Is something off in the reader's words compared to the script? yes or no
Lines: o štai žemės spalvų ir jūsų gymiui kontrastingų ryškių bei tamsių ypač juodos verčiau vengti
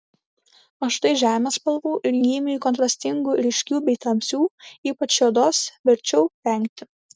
yes